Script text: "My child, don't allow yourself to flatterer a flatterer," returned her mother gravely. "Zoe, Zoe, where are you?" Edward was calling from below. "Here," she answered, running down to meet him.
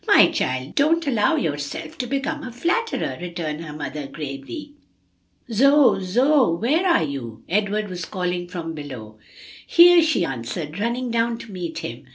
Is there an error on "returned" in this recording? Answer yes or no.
no